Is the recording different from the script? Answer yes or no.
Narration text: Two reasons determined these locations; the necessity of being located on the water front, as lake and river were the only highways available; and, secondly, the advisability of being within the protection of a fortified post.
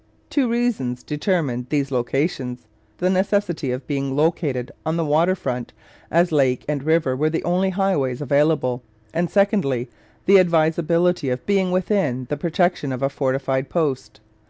no